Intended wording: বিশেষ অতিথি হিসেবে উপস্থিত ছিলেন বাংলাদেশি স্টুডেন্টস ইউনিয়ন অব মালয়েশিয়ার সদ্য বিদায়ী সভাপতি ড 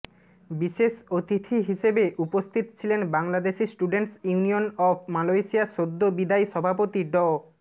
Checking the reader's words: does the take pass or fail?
pass